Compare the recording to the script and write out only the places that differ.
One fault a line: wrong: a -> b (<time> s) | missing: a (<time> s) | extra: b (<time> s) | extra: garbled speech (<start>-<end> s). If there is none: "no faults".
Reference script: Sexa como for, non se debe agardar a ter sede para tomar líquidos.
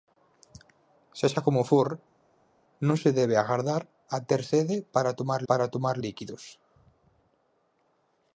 extra: para tomar (5.5 s)